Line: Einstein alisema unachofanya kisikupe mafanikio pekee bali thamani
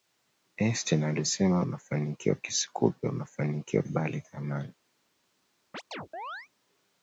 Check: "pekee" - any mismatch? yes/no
yes